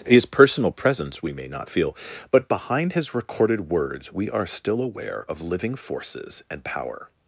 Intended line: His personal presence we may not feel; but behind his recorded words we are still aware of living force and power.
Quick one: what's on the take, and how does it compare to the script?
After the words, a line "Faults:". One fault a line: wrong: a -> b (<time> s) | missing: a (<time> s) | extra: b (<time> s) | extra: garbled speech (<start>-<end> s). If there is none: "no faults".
His personal presence we may not feel; but behind his recorded words we are still aware of living forces and power.
Faults:
wrong: force -> forces (5.8 s)